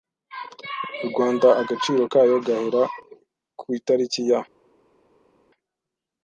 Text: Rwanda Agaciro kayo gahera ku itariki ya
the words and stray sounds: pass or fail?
pass